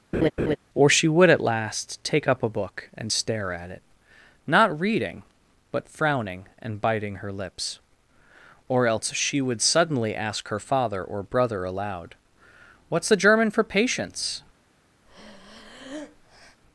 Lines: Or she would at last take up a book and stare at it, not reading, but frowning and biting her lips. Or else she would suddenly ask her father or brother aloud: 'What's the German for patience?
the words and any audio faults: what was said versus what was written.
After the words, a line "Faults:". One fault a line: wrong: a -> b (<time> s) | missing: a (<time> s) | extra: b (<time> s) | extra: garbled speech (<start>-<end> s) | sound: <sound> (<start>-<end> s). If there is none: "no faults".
Or she would at last take up a book and stare at it, not reading, but frowning and biting her lips. Or else she would suddenly ask her father or brother aloud: 'What's the German for patience?
Faults:
sound: laugh (0.1-0.6 s)
sound: breath (15.1-16.6 s)